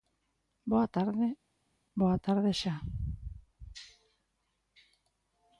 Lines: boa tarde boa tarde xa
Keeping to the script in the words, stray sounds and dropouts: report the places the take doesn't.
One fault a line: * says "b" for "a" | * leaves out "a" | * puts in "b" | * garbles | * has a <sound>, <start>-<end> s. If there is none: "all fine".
all fine